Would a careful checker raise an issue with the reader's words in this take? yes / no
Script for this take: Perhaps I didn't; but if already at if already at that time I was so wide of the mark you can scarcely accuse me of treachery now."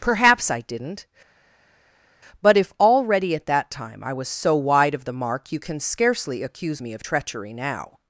yes